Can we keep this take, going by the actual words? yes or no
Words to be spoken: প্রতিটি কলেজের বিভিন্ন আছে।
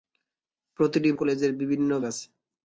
yes